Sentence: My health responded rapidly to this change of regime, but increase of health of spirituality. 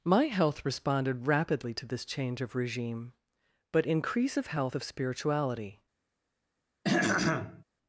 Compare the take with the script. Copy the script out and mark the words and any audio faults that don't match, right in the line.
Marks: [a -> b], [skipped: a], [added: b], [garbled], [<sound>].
My health responded rapidly to this change of regime, but increase of health of spirituality. [throat clearing]